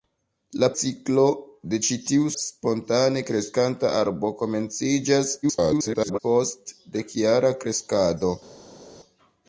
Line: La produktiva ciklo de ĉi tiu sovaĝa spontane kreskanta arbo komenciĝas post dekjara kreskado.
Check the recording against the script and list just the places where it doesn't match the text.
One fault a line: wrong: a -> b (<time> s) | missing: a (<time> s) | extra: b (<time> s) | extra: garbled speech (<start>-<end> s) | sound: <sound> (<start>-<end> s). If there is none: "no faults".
missing: produktiva (0.7 s)
missing: sovaĝa (2.3 s)
extra: garbled speech (5.4-6.2 s)